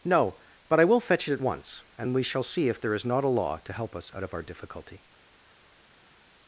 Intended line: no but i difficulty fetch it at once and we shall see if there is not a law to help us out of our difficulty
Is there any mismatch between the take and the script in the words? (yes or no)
yes